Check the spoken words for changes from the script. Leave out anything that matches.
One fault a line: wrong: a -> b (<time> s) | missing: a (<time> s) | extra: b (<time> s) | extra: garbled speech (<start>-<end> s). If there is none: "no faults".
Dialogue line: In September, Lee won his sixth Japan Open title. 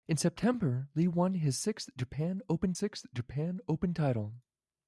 extra: sixth Japan Open (2.7 s)